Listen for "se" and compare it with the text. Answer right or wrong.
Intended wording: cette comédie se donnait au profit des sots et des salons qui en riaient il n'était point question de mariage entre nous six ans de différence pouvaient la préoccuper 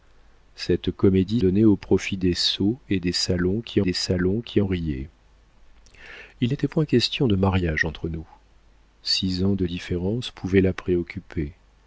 wrong